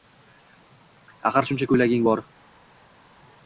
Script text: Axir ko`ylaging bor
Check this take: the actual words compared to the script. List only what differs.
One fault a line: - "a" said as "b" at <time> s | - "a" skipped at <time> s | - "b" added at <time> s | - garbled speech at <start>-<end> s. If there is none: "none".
- "shuncha" added at 1.5 s